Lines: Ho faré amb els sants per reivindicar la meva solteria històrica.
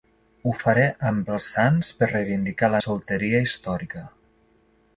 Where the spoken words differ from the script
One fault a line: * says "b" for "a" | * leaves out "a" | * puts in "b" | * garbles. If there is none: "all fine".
* leaves out "meva"